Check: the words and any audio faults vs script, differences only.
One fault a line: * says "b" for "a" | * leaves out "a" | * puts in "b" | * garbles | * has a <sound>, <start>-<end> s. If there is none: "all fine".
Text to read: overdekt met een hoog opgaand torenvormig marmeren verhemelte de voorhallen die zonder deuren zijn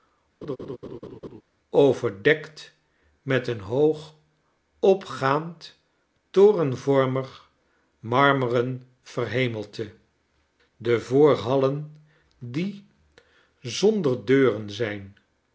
* has a laugh, 0.4-1.4 s